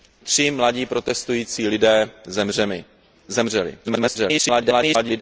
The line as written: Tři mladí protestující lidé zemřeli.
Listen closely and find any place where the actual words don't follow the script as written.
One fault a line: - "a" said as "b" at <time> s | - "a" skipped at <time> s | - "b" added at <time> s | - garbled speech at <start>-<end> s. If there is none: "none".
- garbled speech at 3.8-5.2 s